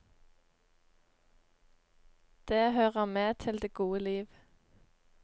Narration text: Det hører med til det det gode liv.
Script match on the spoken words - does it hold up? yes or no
no